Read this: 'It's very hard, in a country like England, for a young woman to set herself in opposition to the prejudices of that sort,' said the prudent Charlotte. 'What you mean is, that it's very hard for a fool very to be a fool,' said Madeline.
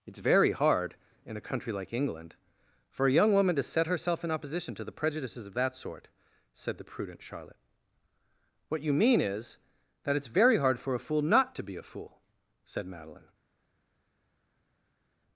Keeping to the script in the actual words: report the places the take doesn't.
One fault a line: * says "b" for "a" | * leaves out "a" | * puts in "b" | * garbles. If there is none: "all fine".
* says "not" for "very"